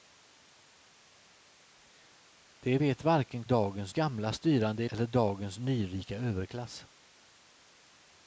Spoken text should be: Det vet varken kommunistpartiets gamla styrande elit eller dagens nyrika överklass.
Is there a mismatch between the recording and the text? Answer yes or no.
yes